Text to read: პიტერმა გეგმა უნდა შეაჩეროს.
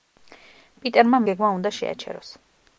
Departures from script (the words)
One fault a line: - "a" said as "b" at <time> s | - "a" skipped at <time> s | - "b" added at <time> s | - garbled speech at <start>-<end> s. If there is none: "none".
none